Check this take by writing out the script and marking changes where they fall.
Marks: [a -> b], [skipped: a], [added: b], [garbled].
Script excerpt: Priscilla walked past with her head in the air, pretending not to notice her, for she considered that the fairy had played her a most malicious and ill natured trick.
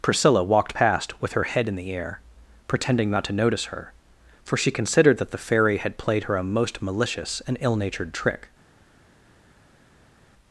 Priscilla walked past with her head in the air, pretending not to notice her, for she considered that the fairy had played her a most malicious and ill natured trick.